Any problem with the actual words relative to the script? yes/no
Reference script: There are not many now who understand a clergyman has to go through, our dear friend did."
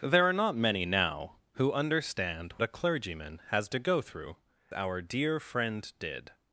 no